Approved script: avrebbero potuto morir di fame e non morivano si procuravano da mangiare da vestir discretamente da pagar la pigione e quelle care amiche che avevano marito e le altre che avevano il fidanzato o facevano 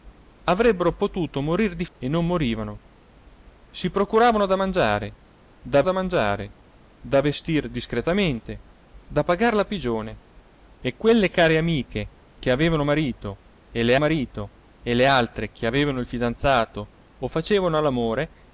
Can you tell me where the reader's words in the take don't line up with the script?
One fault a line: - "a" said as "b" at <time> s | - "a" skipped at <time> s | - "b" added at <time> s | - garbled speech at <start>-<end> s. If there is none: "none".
- "fame" skipped at 1.9 s
- "da mangiare da" added at 5.8 s
- "marito e le" added at 14.0 s